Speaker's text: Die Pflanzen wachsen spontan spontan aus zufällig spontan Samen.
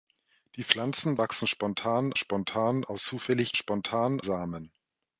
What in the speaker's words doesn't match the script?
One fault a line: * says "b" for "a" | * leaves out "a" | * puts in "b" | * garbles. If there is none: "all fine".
all fine